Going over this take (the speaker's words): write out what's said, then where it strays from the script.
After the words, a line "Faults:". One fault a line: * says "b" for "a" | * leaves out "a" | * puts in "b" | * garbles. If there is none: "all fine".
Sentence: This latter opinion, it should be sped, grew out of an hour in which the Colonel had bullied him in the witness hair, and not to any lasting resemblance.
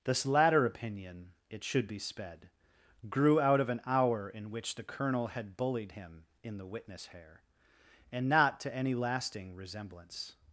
This latter opinion, it should be sped, grew out of an hour in which the Colonel had bullied him in the witness hair, and not to any lasting resemblance.
Faults:
all fine